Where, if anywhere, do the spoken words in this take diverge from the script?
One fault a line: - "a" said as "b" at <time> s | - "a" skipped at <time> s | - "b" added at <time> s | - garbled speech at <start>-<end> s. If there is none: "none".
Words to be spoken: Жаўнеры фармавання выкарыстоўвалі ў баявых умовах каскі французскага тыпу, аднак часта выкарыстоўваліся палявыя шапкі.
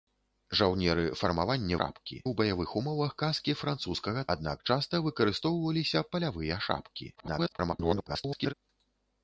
- "выкарыстоўвалі" said as "шапкі" at 1.8 s
- "тыпу" skipped at 4.2 s
- garbled speech at 7.2-8.5 s